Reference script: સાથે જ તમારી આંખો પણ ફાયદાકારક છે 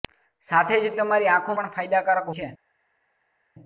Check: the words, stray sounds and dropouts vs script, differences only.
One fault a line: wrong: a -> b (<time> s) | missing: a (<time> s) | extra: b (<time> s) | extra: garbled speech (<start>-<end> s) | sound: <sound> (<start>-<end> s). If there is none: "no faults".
no faults